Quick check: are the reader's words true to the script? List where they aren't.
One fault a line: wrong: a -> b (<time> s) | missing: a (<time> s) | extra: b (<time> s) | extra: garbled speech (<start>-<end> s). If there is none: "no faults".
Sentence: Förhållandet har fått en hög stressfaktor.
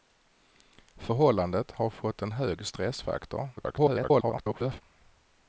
extra: garbled speech (3.6-4.8 s)